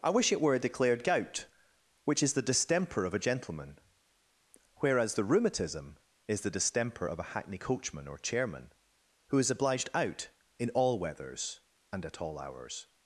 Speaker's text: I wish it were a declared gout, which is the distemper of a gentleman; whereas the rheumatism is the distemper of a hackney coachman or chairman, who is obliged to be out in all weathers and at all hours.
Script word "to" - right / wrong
wrong